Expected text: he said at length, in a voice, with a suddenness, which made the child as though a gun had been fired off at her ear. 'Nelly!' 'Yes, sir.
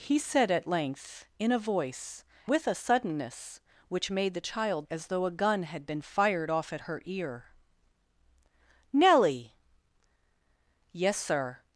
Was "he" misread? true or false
false